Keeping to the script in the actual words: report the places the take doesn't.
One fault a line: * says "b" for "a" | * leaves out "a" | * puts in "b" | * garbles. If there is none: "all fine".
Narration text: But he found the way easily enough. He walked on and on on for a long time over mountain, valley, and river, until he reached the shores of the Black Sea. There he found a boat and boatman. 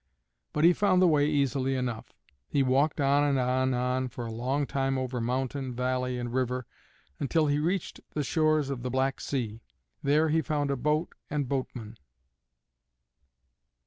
all fine